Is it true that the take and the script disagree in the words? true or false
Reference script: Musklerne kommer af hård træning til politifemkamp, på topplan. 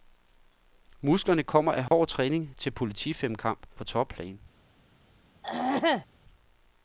false